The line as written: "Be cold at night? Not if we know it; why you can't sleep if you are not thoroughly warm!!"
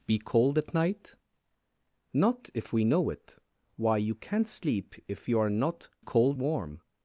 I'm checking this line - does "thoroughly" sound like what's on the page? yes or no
no